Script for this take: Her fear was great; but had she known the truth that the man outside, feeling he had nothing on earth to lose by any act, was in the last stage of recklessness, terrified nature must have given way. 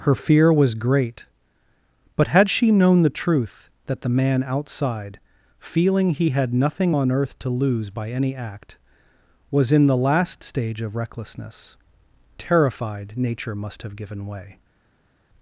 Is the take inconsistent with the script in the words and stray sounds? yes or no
no